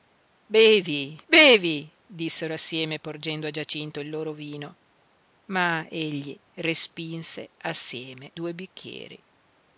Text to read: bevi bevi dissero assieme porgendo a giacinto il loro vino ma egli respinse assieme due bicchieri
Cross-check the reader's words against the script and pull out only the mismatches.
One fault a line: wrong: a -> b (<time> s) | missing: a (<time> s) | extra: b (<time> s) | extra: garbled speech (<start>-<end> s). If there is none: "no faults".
no faults